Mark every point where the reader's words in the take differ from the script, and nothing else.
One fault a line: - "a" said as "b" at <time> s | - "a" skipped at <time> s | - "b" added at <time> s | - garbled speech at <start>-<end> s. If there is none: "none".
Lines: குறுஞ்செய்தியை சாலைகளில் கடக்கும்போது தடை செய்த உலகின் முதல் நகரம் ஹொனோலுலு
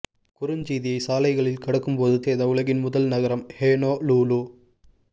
- "தடை" skipped at 2.2 s